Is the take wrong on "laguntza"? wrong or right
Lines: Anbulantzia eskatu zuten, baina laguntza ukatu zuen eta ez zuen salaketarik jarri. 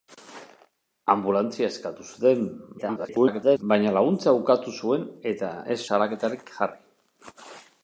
right